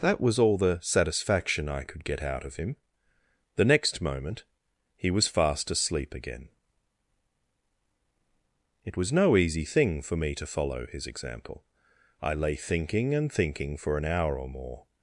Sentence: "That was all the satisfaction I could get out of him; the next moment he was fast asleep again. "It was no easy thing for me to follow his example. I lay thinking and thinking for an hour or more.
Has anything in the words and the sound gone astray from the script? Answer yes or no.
no